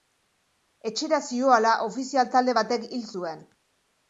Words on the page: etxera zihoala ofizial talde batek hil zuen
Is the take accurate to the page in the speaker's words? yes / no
yes